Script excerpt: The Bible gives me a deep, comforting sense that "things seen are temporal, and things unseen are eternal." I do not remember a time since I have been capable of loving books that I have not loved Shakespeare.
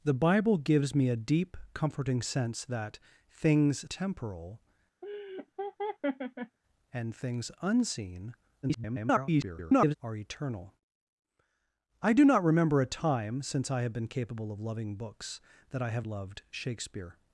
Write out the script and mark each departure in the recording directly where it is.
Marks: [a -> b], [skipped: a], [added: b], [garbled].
The Bible gives me a deep, comforting sense that "things [skipped: seen are] temporal, and things unseen [garbled] are eternal." I do not remember a time since I have been capable of loving books that I have [skipped: not] loved Shakespeare.